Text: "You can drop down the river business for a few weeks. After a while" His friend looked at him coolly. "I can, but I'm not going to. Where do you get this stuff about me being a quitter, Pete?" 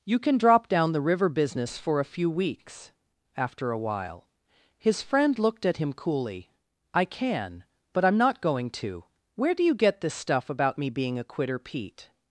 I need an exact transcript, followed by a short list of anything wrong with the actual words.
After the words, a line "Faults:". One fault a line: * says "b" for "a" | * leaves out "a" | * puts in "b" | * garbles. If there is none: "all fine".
"You can drop down the river business for a few weeks. After a while" His friend looked at him coolly. "I can, but I'm not going to. Where do you get this stuff about me being a quitter, Pete?"
Faults:
all fine